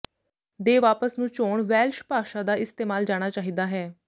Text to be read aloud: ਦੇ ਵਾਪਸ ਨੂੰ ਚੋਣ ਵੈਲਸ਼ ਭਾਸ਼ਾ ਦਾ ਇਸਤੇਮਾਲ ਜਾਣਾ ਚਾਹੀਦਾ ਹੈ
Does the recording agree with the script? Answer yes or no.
yes